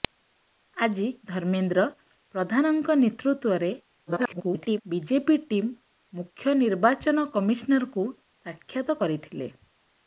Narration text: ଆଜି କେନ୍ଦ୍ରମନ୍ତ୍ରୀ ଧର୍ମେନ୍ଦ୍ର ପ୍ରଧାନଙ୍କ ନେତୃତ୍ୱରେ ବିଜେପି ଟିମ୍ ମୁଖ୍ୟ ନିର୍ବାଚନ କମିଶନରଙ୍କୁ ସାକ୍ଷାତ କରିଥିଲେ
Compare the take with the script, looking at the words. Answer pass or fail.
fail